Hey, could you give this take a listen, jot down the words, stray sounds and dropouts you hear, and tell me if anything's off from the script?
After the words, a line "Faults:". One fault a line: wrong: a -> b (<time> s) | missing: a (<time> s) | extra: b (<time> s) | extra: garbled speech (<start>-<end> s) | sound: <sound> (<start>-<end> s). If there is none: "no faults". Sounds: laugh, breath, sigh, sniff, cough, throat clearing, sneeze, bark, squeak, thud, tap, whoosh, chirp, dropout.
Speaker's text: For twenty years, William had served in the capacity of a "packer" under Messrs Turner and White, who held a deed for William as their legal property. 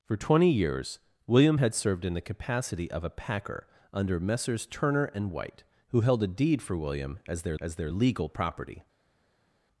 For twenty years, William had served in the capacity of a "packer" under Messrs Turner and White, who held a deed for William as their as their legal property.
Faults:
extra: as their (7.6 s)